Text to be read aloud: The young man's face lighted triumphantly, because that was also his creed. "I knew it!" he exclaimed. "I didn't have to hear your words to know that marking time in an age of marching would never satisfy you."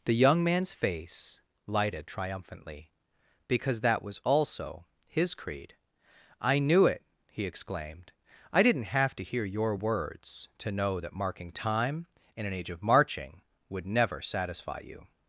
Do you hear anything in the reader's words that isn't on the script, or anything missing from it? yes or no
no